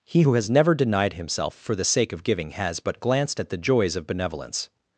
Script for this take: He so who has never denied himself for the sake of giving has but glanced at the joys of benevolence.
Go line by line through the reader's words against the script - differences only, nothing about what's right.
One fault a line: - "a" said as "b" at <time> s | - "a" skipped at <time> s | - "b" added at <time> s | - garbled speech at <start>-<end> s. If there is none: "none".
- "so" skipped at 0.2 s